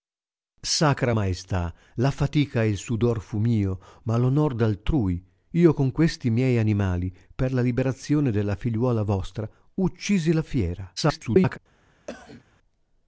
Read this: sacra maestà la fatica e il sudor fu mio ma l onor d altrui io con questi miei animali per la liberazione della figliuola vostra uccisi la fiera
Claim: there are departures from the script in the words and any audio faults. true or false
true